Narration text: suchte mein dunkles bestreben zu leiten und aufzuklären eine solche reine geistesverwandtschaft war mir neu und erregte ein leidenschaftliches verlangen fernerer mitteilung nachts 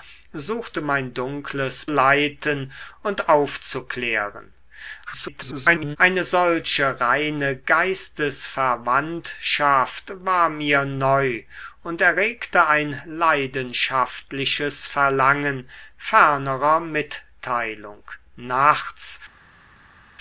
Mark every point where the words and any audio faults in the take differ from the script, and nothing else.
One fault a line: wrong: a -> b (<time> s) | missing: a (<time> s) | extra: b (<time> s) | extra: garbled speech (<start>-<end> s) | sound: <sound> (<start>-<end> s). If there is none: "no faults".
missing: bestreben zu (1.9 s)
extra: garbled speech (5.1-6.0 s)